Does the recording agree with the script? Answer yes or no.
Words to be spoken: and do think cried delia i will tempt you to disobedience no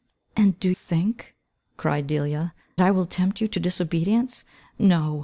yes